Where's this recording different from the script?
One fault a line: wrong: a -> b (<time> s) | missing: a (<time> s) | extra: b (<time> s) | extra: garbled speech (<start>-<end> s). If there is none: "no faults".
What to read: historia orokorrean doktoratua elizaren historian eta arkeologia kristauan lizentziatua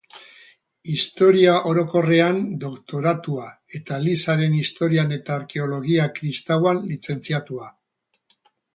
extra: eta (3.8 s)